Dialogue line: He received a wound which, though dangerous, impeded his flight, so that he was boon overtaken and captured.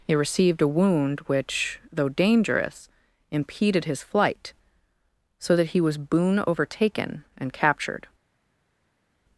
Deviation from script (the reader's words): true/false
false